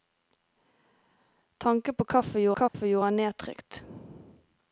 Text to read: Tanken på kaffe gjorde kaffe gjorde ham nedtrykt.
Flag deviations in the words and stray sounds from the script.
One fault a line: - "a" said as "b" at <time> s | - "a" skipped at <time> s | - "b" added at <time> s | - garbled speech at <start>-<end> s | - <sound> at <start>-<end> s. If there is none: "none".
- dropout at 2.7-2.7 s